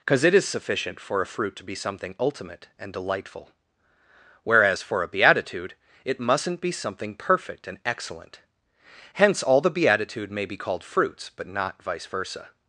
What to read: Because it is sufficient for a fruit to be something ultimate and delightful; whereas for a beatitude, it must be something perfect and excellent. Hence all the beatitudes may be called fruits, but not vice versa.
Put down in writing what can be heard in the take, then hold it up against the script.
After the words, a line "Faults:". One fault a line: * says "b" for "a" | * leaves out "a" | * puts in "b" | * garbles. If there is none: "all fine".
Because it is sufficient for a fruit to be something ultimate and delightful; whereas for a beatitude, it mustn't be something perfect and excellent. Hence all the beatitude may be called fruits, but not vice versa.
Faults:
* says "mustn't" for "must"
* says "beatitude" for "beatitudes"